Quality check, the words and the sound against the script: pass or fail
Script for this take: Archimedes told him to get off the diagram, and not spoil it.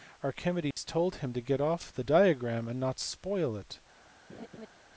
fail